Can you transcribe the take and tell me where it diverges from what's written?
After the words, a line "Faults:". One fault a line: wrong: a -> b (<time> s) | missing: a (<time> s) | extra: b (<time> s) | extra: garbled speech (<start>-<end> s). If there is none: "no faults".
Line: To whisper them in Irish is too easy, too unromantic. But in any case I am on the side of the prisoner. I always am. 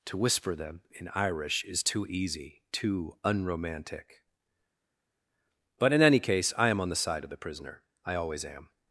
To whisper them in Irish is too easy, too unromantic. But in any case I am on the side of the prisoner. I always am.
Faults:
no faults